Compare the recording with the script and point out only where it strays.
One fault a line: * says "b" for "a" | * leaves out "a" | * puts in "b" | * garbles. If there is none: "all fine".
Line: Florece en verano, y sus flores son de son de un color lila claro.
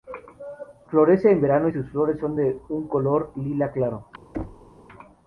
* leaves out "son de"